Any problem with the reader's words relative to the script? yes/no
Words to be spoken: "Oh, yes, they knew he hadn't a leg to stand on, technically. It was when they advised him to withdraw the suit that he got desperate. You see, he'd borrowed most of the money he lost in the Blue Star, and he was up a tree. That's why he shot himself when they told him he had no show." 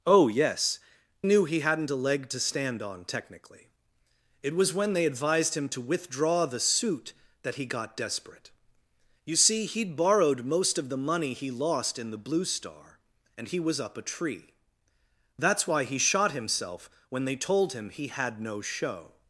yes